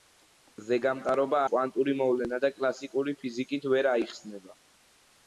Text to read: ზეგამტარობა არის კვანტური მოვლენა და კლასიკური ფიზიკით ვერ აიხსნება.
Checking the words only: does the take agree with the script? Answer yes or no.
no